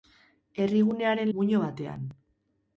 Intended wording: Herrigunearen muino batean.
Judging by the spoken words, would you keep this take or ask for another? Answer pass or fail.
pass